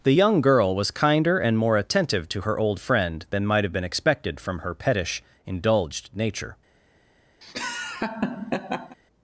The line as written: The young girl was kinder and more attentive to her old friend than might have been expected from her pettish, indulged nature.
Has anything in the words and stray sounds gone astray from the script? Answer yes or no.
yes